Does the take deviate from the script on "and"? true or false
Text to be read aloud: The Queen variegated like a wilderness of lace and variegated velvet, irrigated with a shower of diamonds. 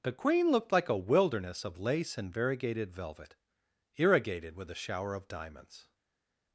false